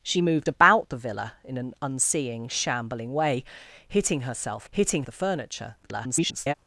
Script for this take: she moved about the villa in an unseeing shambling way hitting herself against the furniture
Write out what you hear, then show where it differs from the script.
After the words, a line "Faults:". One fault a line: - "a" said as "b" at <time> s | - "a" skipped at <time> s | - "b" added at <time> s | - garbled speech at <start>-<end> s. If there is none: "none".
she moved about the villa in an unseeing shambling way hitting herself hitting the furniture [garbled]
Faults:
- "against" said as "hitting" at 4.7 s
- garbled speech at 5.8-6.5 s